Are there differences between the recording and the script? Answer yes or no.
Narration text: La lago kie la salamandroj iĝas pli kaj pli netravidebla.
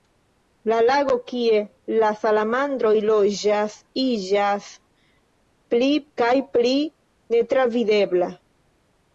yes